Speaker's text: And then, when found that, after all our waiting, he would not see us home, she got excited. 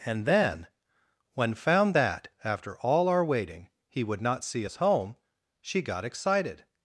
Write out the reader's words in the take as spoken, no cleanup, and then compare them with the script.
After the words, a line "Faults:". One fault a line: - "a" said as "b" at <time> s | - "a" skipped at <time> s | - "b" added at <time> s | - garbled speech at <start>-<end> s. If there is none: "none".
And then, when found that, after all our waiting, he would not see us home, she got excited.
Faults:
none